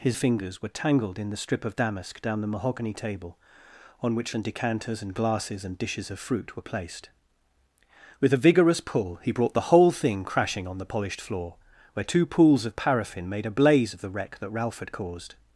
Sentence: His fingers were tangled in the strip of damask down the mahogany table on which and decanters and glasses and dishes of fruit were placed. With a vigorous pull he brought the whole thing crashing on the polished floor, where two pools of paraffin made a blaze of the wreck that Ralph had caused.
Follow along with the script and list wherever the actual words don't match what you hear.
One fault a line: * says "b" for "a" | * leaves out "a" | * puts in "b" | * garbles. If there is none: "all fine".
all fine